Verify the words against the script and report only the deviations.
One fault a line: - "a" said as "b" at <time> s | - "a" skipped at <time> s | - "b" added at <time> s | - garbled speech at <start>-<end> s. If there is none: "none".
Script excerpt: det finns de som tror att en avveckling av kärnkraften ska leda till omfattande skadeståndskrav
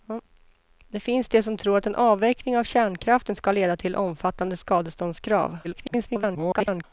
- garbled speech at 5.6-6.8 s